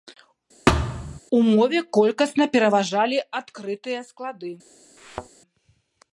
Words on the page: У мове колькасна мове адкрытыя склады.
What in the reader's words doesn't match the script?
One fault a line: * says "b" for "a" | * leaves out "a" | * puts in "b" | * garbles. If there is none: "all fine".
* says "пераважалі" for "мове"